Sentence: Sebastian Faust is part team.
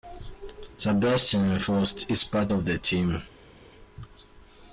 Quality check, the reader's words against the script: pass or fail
fail